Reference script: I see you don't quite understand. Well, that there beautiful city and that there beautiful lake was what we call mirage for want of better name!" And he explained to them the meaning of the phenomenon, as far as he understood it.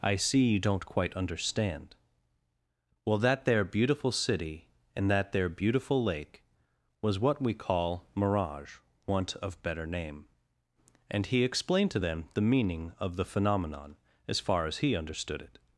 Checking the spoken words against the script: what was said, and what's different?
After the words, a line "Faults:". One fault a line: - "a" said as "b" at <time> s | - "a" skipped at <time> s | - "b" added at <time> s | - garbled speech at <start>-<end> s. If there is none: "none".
I see you don't quite understand. Well, that there beautiful city and that there beautiful lake was what we call mirage want of better name!" And he explained to them the meaning of the phenomenon, as far as he understood it.
Faults:
- "for" skipped at 8.8 s